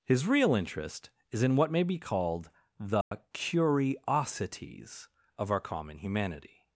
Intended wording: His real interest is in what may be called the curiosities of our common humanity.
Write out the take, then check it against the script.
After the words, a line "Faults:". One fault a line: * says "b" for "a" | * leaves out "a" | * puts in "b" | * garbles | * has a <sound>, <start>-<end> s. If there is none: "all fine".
His real interest is in what may be called the curiosities of our common humanity.
Faults:
* has a dropout, 3.0-3.1 s